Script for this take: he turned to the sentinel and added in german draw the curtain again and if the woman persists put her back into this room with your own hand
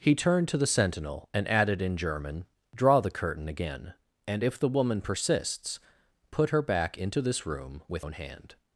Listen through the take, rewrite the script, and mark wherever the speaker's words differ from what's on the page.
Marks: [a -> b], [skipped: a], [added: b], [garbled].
he turned to the sentinel and added in german draw the curtain again and if the woman persists put her back into this room with [skipped: your] own hand